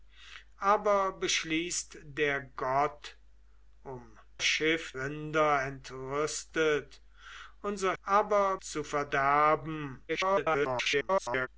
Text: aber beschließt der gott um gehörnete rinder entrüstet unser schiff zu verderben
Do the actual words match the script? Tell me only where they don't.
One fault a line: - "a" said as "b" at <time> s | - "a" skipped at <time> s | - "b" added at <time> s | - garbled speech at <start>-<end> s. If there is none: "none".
- "gehörnete" said as "schiff" at 4.4 s
- "schiff" said as "aber" at 8.0 s
- garbled speech at 10.1-11.5 s